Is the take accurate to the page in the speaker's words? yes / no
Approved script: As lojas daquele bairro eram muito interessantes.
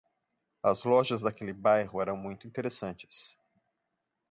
yes